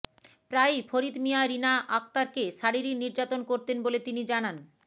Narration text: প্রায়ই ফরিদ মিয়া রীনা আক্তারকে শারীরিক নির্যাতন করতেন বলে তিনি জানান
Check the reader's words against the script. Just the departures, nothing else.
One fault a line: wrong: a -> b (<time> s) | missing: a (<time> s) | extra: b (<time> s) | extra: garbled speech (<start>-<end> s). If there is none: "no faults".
no faults